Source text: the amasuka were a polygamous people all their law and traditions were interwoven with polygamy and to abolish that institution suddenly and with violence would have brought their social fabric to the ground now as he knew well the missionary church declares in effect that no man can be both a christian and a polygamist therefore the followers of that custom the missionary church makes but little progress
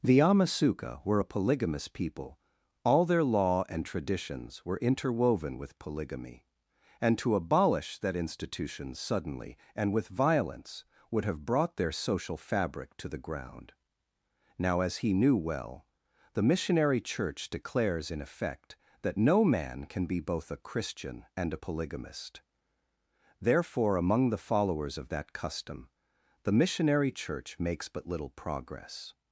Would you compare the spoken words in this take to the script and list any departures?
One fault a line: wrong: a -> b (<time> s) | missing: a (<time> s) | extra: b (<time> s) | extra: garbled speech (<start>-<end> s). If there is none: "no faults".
extra: among (24.0 s)